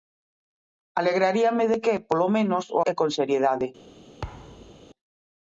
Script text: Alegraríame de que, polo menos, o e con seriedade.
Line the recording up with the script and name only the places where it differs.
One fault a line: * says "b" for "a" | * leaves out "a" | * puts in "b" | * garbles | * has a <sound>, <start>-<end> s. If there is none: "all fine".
* has a thud, 4.2-4.9 s